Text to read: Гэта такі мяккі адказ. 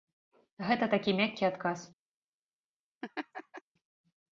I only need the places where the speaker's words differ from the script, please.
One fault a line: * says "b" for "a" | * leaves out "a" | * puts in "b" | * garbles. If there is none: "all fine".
all fine